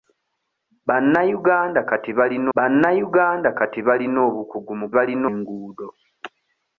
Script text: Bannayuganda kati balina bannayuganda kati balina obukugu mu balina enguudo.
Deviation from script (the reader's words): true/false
false